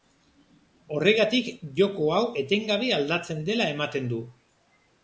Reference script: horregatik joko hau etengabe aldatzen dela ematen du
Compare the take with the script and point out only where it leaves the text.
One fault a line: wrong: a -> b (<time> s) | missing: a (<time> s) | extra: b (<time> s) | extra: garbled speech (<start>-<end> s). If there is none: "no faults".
no faults